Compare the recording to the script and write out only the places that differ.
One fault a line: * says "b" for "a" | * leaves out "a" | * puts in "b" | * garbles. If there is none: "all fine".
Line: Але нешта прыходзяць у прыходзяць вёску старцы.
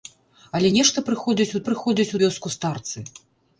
all fine